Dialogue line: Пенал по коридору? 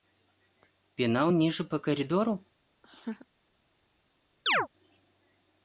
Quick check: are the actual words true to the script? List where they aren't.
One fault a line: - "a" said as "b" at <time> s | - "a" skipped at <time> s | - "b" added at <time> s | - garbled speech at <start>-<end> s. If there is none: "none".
- "ниже" added at 1.3 s